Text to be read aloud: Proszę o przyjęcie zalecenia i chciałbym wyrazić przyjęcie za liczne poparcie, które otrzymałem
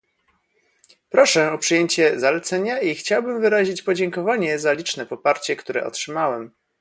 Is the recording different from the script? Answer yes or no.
yes